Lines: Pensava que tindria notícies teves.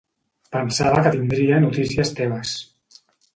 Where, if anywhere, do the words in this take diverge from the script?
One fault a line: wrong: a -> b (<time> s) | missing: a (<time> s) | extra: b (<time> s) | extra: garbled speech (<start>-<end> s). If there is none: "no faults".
no faults